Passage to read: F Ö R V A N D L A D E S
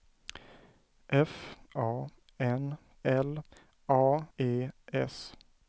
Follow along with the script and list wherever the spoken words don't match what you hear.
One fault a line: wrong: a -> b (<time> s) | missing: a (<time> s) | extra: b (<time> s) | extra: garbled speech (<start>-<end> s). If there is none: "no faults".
missing: Ö R V (1.3 s)
missing: D (2.8 s)
missing: D (4.3 s)